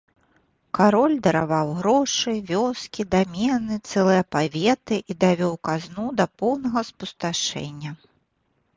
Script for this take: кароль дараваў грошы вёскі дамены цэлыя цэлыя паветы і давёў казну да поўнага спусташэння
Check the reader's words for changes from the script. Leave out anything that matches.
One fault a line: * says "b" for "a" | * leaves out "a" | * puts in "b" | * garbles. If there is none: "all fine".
* leaves out "цэлыя"